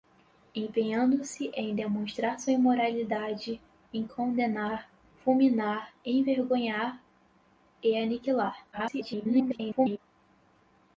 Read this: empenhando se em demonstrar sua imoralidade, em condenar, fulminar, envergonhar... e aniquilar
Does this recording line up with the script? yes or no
no